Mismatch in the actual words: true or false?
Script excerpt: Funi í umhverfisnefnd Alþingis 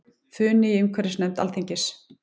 false